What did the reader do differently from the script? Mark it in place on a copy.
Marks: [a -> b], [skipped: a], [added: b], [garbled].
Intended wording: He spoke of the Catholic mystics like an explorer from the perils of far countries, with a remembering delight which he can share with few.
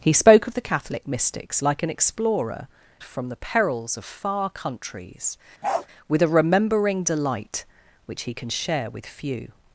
He spoke of the Catholic mystics like an explorer from the perils of far countries, with a remembering delight which he can share with few.